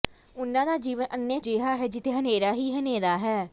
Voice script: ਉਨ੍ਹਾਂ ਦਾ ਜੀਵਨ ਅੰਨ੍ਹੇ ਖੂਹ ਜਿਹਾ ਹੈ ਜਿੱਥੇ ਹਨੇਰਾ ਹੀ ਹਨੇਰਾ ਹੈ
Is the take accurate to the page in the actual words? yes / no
no